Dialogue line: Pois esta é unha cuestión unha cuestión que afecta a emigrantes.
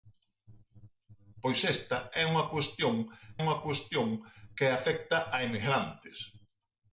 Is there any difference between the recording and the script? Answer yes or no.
no